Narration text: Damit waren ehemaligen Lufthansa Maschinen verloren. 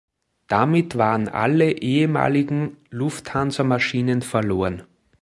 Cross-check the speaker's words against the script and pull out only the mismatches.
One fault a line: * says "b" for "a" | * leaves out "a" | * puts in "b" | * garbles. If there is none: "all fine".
* puts in "alle"